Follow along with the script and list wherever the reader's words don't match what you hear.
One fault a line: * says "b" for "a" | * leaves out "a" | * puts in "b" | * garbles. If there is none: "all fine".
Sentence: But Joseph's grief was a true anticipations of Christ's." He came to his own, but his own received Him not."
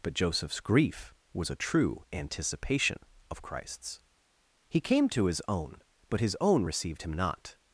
* says "anticipation" for "anticipations"